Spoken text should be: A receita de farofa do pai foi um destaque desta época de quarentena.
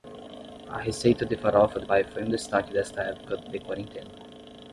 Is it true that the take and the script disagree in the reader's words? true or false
false